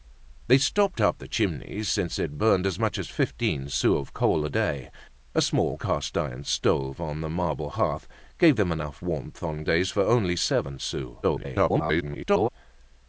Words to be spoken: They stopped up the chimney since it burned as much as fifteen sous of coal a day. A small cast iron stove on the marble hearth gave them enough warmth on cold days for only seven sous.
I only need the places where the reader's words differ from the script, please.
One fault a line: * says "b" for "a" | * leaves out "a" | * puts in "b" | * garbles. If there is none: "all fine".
* leaves out "cold"
* garbles